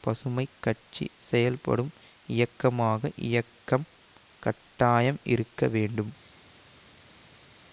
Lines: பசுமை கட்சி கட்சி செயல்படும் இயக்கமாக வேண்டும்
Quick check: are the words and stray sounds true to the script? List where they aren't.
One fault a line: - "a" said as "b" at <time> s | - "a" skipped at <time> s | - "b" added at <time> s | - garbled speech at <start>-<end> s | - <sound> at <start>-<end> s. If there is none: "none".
- "கட்சி" skipped at 1.1 s
- "இயக்கம் கட்டாயம் இருக்க" added at 3.3 s